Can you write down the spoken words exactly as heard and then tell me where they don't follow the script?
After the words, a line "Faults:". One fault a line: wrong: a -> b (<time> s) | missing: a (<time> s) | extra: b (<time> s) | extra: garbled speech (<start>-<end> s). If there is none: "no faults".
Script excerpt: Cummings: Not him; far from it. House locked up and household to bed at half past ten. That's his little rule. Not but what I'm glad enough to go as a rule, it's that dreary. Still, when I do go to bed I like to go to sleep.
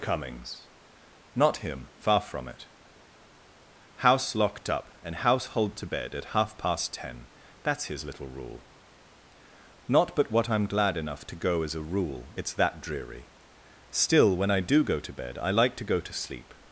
Cummings: Not him; far from it. House locked up and household to bed at half past ten. That's his little rule. Not but what I'm glad enough to go as a rule, it's that dreary. Still, when I do go to bed I like to go to sleep.
Faults:
no faults